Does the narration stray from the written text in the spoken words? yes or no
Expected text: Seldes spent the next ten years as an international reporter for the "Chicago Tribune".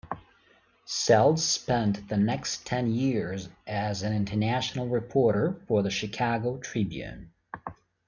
no